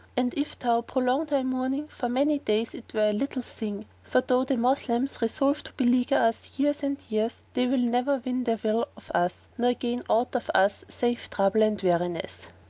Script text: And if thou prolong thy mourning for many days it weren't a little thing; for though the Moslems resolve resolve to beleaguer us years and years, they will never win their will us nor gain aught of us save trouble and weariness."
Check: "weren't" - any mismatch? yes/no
yes